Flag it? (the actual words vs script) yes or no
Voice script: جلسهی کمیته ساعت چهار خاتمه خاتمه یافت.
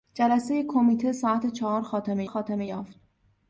no